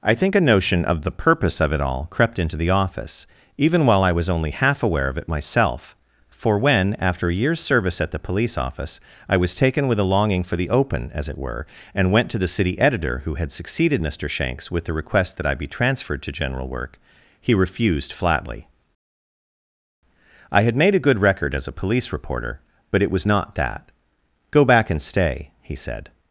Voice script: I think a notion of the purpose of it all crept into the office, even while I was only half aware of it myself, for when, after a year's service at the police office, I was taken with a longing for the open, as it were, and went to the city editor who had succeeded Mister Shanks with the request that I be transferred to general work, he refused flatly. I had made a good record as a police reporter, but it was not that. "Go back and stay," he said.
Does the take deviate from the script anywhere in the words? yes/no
no